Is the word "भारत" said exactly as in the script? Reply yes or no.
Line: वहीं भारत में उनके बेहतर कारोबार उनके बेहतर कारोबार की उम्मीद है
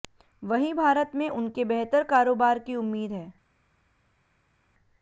yes